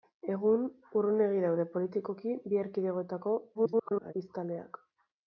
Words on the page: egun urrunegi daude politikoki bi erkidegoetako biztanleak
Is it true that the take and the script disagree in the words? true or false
true